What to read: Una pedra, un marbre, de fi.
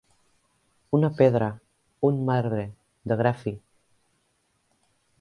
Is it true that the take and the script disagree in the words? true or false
true